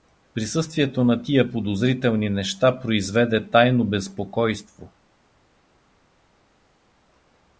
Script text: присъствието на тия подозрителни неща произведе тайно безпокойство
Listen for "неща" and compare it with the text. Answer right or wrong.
right